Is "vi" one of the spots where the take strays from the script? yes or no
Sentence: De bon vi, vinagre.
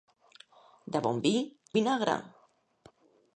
no